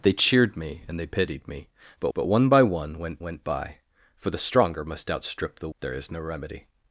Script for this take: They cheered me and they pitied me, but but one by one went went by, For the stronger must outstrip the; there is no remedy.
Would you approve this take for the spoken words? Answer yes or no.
yes